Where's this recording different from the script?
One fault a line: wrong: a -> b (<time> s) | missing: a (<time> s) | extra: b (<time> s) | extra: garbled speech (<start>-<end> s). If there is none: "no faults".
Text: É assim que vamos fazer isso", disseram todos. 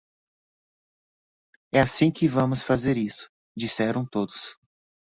no faults